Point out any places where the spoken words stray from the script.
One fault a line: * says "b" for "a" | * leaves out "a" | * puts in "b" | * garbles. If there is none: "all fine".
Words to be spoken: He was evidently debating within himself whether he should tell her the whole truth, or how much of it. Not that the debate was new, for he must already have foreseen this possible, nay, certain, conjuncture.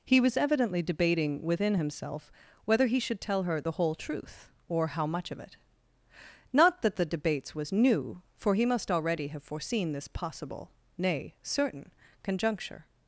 * says "debates" for "debate"